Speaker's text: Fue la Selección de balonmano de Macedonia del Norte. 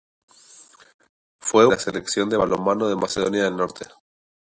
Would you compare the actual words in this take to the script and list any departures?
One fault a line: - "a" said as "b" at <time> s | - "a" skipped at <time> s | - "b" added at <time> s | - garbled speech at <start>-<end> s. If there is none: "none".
none